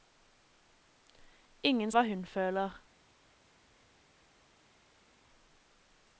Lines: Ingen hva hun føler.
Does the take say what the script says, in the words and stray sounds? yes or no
yes